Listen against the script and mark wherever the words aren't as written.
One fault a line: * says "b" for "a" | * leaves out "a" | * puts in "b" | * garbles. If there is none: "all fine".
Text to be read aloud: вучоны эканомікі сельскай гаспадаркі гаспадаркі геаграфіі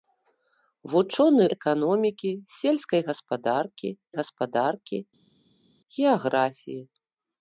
all fine